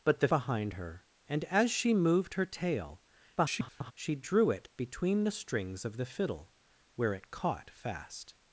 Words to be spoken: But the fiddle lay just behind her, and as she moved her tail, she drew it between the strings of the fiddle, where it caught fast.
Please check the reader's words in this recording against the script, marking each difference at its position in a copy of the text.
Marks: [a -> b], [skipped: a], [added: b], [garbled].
But the [skipped: fiddle lay just] behind her, and as she moved her tail, [garbled] she drew it between the strings of the fiddle, where it caught fast.